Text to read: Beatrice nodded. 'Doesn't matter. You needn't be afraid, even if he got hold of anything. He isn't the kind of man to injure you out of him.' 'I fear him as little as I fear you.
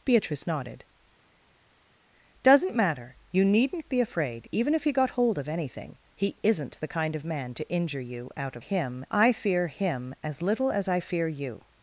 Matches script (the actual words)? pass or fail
pass